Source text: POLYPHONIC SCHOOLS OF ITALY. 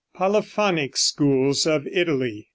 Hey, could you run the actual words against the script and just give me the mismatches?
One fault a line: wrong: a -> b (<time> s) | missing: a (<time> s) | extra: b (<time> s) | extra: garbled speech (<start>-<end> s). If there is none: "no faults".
no faults